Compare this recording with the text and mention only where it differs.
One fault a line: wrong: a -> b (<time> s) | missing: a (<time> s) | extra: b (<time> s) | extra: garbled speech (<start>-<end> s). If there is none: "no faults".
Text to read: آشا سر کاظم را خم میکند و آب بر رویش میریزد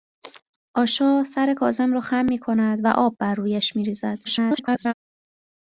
extra: garbled speech (4.2-4.9 s)